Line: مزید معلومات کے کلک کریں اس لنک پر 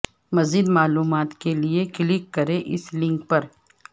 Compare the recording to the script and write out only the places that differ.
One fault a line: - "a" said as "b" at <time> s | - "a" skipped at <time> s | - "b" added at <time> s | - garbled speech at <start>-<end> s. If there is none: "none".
- "لیے" added at 1.6 s